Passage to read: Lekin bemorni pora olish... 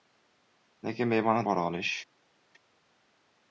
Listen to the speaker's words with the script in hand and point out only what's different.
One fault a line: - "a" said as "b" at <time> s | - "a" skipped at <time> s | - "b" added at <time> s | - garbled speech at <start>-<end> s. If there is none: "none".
none